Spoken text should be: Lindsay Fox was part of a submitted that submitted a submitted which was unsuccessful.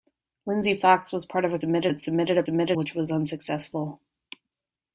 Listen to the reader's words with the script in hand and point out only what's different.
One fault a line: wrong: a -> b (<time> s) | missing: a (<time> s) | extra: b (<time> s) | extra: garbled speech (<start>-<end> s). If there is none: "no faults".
no faults